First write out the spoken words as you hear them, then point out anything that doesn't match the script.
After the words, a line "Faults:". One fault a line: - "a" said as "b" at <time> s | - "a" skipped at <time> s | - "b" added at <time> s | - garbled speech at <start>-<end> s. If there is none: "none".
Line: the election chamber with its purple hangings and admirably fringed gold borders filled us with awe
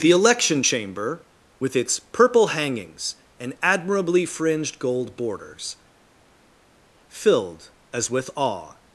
the election chamber with its purple hangings and admirably fringed gold borders filled as with awe
Faults:
- "us" said as "as" at 7.9 s